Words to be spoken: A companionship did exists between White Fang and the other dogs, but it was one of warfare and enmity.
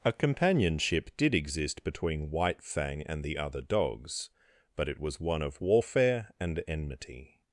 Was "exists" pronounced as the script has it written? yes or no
no